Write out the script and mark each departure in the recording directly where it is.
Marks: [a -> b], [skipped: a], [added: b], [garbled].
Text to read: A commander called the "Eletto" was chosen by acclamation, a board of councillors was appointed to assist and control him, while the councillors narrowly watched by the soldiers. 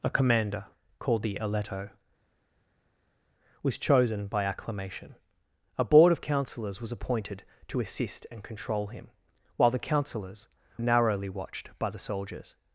A commander called the "Eletto" was chosen by acclamation, a board of councillors was appointed to assist and control him, while the councillors narrowly watched by the soldiers.